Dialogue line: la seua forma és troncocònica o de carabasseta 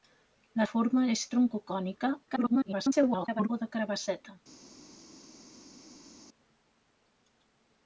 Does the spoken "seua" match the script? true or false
false